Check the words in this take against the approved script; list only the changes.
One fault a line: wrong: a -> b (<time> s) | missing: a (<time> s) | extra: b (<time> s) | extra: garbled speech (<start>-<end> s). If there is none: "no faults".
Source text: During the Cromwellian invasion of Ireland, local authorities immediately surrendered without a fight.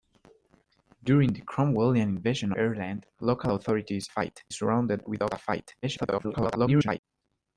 missing: of (2.5 s)
wrong: immediately -> fight (4.1 s)
extra: garbled speech (5.8-7.0 s)